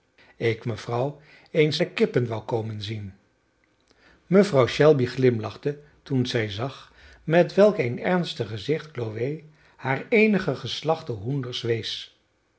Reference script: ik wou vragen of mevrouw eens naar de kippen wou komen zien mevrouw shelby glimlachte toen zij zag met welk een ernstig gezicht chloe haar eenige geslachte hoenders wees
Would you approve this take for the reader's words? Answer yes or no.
no